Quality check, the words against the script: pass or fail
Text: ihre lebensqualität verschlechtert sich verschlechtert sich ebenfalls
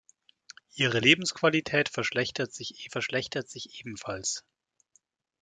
pass